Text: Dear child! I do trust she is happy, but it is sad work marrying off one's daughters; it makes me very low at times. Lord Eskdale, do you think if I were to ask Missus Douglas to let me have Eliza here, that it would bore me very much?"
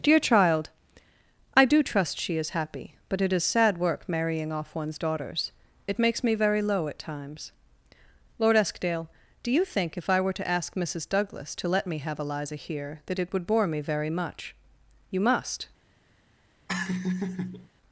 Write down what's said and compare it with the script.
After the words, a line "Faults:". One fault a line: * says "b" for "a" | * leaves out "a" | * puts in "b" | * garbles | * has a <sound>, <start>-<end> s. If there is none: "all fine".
Dear child! I do trust she is happy, but it is sad work marrying off one's daughters; it makes me very low at times. Lord Eskdale, do you think if I were to ask Missus Douglas to let me have Eliza here, that it would bore me very much?" You must
Faults:
* puts in "You must"
* has a laugh, 16.7-17.7 s